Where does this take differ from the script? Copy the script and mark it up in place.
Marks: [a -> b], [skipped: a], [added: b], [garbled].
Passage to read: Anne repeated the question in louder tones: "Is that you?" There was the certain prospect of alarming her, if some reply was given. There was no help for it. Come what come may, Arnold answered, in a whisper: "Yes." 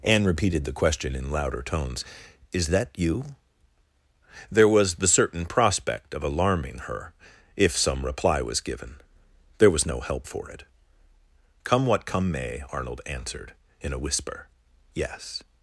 Anne repeated the question in louder tones: "Is that you?" There was the certain prospect of alarming her, if some reply was given. There was no help for it. Come what come may, Arnold answered, in a whisper: "Yes."